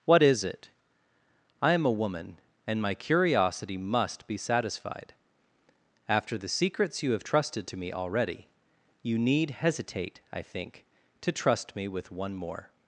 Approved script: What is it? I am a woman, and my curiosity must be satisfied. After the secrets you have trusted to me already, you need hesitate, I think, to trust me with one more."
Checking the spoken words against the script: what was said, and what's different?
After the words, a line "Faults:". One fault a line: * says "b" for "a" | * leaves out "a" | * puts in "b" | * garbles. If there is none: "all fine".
What is it? I am a woman, and my curiosity must be satisfied. After the secrets you have trusted to me already, you need hesitate, I think, to trust me with one more."
Faults:
all fine